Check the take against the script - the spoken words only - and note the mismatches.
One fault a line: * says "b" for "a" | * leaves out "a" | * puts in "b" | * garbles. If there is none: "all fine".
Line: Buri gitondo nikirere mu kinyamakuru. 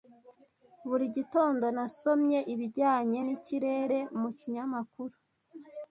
* puts in "nasomye ibijyanye"